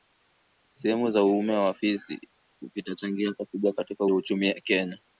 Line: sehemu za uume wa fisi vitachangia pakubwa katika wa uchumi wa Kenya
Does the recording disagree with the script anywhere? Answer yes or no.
no